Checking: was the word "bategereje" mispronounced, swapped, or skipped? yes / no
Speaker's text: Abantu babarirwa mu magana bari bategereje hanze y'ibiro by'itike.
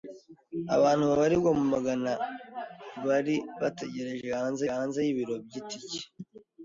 no